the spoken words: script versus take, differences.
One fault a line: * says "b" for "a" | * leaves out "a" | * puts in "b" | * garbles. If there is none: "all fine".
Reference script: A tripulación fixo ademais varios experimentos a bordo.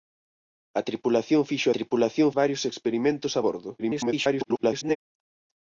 * says "tripulación" for "ademais"
* garbles